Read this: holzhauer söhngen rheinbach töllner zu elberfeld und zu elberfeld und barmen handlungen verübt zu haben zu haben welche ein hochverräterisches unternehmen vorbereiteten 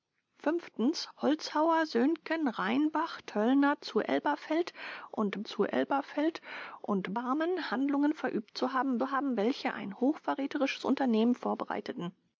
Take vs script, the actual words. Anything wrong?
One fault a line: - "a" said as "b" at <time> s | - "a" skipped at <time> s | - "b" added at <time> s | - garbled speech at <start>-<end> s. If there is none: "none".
none